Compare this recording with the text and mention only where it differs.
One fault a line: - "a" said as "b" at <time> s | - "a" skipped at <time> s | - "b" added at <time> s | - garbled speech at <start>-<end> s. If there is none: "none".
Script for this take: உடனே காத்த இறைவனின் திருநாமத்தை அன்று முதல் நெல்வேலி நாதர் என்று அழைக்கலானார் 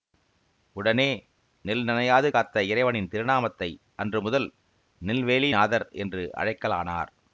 - "நெல் நனையாது" added at 1.6 s